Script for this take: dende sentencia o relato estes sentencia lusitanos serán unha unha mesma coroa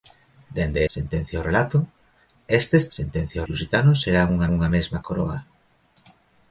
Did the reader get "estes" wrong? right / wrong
right